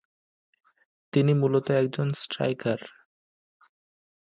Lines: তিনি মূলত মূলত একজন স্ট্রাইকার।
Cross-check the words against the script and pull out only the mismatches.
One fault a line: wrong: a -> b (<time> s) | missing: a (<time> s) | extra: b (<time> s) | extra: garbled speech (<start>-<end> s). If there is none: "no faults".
missing: মূলত (1.7 s)